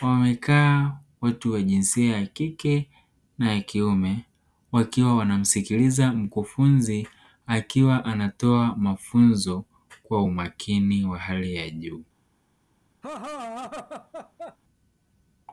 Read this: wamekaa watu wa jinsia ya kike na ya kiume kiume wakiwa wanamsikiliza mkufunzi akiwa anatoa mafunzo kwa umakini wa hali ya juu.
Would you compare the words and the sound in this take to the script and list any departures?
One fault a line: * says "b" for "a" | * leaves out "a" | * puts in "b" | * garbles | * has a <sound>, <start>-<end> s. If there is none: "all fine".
* leaves out "kiume"
* has a laugh, 13.0-14.6 s